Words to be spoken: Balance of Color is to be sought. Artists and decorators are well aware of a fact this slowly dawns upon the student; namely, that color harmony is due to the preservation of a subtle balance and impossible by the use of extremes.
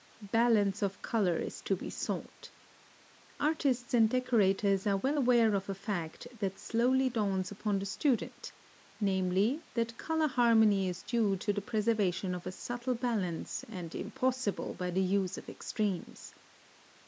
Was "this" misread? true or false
true